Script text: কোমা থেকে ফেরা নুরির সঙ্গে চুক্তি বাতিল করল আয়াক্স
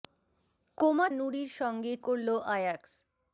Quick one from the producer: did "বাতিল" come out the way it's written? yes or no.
no